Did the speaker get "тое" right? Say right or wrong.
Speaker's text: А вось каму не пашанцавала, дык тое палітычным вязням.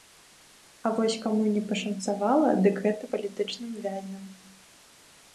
wrong